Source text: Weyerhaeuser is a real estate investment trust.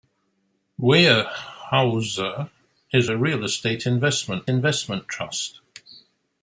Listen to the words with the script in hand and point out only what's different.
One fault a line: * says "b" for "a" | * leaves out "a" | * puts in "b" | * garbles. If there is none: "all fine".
* puts in "investment"